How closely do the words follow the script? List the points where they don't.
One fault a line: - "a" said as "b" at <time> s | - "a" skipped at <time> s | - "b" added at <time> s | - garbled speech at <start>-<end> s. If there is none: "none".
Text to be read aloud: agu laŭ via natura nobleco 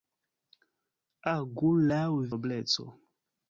- "via natura" skipped at 2.0 s